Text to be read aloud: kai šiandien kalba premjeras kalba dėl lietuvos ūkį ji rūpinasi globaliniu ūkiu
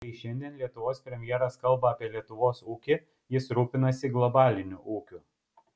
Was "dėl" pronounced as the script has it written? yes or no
no